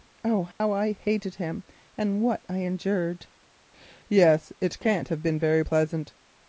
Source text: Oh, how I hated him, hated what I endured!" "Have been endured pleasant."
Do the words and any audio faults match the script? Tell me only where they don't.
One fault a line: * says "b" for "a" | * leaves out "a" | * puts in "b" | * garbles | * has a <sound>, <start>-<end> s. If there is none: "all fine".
* has a dropout, 0.5-0.6 s
* says "and" for "hated"
* puts in "Yes it can't"
* says "very" for "endured"